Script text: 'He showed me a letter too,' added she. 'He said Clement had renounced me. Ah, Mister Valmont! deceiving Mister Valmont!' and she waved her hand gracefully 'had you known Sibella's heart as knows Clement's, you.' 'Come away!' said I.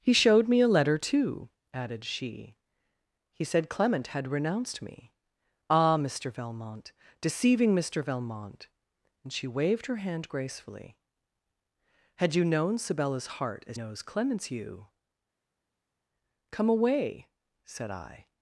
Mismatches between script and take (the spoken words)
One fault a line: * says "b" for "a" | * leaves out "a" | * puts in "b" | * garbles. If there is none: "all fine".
all fine